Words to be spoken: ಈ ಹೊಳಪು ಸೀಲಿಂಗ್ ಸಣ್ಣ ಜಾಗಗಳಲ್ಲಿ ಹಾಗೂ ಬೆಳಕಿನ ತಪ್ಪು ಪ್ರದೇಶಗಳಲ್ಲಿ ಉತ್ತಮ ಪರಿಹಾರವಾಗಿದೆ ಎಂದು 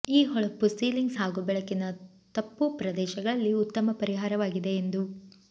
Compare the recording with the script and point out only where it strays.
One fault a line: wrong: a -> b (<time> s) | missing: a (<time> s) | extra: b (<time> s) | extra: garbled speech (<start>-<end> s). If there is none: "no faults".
missing: ಸಣ್ಣ ಜಾಗಗಳಲ್ಲಿ (1.1 s)